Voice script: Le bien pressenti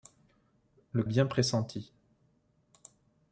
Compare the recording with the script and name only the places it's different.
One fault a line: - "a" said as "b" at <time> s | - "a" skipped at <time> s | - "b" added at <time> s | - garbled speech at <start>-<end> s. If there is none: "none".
none